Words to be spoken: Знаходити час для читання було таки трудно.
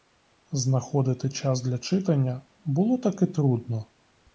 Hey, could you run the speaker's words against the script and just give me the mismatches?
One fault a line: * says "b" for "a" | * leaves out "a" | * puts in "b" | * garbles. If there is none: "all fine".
all fine